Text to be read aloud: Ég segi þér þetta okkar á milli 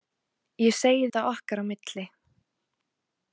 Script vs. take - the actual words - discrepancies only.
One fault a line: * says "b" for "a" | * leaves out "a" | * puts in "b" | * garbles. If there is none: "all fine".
* leaves out "þér"